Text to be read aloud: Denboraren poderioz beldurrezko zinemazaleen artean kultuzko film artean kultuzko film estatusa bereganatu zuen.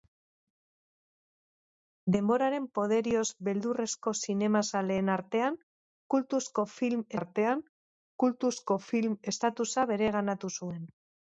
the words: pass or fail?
pass